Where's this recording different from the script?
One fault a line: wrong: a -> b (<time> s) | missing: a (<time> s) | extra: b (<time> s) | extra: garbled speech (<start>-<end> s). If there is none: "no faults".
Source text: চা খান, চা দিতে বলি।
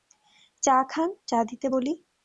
no faults